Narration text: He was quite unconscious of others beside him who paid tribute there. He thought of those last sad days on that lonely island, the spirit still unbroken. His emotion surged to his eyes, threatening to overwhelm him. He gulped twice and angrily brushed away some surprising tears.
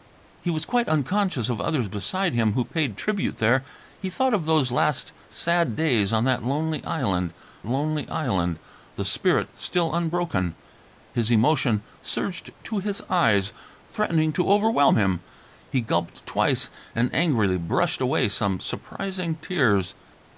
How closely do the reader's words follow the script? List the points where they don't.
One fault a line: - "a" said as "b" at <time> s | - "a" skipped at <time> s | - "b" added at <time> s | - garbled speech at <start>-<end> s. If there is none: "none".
- "lonely island" added at 7.7 s